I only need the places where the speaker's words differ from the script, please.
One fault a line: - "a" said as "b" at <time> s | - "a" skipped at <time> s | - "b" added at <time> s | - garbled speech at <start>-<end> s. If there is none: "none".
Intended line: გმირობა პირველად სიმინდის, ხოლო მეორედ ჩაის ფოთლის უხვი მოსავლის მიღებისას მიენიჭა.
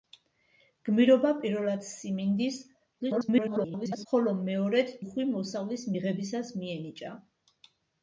- garbled speech at 3.0-4.1 s
- "ჩაის ფოთლის" skipped at 4.9 s